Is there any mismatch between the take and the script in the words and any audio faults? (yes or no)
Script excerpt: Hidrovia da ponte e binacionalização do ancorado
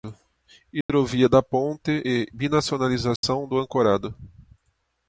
yes